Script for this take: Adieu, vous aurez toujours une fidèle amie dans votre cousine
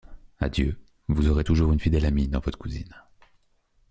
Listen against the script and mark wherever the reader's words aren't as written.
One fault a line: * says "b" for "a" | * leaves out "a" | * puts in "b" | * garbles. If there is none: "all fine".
all fine